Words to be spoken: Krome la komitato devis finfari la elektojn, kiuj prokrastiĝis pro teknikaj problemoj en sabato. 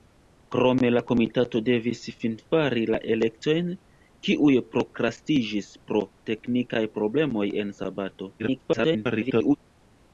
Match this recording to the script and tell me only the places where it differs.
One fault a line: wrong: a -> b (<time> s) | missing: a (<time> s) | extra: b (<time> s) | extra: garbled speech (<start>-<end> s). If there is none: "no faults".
extra: garbled speech (8.4-9.6 s)